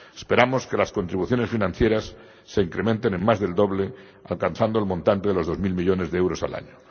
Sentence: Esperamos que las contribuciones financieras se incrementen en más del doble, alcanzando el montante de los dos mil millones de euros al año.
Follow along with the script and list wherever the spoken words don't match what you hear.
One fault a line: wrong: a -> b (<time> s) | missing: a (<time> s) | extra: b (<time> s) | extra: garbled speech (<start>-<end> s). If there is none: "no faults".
no faults